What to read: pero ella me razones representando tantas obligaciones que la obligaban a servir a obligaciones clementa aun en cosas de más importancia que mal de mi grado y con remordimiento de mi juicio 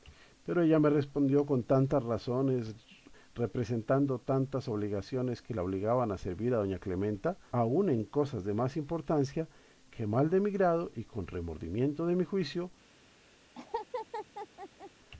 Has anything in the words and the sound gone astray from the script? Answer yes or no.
yes